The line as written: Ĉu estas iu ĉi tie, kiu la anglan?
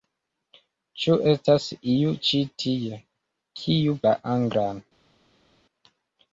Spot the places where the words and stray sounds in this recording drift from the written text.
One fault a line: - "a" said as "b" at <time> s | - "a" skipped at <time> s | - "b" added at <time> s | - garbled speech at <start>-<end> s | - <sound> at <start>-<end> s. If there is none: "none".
none